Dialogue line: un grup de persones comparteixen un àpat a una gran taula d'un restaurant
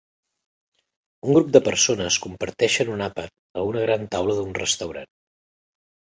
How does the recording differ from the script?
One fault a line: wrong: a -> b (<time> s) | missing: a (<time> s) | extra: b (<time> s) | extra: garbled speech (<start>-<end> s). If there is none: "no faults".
no faults